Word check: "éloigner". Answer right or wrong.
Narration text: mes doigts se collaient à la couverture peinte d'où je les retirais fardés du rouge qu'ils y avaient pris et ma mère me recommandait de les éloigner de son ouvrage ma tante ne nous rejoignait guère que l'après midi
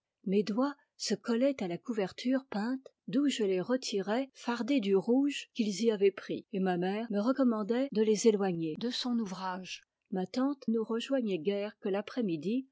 right